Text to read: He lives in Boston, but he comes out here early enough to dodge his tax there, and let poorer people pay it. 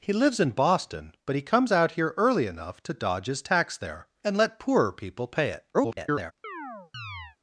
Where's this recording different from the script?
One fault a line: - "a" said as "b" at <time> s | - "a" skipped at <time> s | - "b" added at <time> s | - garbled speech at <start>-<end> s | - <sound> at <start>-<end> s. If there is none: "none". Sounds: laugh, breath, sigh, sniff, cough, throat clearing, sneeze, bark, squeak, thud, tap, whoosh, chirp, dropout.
- garbled speech at 5.7-6.3 s
- chirp at 6.4-7.4 s